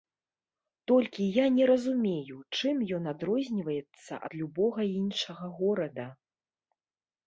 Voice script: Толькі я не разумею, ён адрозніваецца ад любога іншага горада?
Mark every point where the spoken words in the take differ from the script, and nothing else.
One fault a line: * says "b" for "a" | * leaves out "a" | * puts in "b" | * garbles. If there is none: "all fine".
* puts in "чым"